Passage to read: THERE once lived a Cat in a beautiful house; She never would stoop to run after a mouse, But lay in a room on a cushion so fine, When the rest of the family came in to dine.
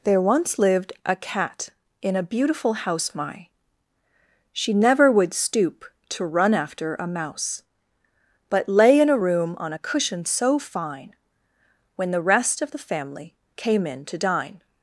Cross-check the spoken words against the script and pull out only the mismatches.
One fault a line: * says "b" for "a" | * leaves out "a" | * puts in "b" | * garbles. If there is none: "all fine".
* puts in "my"